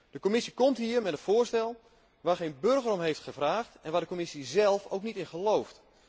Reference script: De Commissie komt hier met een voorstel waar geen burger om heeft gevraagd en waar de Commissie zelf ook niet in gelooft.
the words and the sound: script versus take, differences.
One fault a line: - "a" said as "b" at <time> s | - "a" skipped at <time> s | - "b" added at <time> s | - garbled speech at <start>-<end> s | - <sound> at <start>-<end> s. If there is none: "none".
none